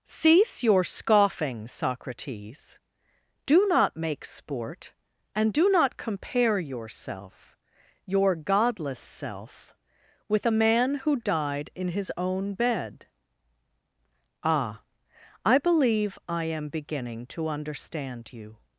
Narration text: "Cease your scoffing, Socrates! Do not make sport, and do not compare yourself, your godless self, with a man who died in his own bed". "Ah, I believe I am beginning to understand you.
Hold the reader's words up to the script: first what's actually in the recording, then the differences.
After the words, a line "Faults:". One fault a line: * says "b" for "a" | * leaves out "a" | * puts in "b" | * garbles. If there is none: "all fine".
"Cease your scoffing, Socrates! Do not make sport, and do not compare yourself, your godless self, with a man who died in his own bed". "Ah, I believe I am beginning to understand you.
Faults:
all fine